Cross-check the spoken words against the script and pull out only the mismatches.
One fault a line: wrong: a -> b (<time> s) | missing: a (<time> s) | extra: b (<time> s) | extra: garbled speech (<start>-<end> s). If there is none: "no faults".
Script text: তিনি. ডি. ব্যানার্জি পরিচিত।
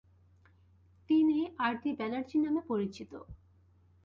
extra: আর (1.6 s)
extra: নামে (2.4 s)